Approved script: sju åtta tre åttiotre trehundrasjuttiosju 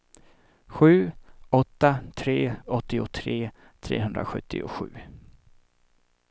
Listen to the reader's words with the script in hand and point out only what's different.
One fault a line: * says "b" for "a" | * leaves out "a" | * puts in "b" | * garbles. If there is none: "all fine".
all fine